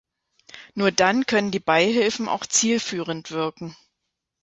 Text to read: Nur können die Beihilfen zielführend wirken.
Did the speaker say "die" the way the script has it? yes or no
yes